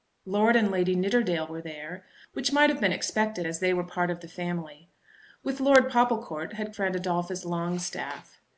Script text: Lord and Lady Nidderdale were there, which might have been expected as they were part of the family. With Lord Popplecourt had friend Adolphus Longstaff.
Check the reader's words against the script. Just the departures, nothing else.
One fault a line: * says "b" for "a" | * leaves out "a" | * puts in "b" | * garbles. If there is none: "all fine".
all fine